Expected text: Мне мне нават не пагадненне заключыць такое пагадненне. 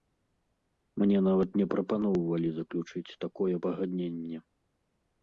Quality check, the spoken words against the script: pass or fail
fail